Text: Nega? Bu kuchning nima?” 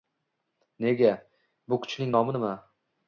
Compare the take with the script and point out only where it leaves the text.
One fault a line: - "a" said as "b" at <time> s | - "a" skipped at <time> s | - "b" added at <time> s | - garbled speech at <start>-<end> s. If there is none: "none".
- "nomi" added at 2.2 s